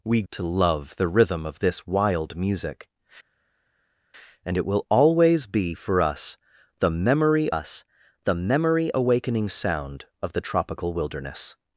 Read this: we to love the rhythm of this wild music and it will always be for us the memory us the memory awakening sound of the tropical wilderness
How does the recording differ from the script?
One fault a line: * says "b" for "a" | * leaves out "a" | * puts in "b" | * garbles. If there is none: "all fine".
all fine